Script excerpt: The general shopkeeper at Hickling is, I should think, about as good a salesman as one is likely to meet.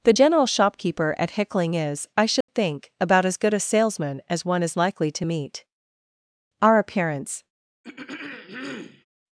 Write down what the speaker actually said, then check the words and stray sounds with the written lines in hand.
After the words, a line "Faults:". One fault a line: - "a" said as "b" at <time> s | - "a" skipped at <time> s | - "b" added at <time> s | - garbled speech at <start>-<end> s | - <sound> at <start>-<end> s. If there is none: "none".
The general shopkeeper at Hickling is, I should think, about as good a salesman as one is likely to meet. Our appearance
Faults:
- dropout at 2.4-2.5 s
- "Our appearance" added at 6.6 s
- throat clearing at 7.8-9.1 s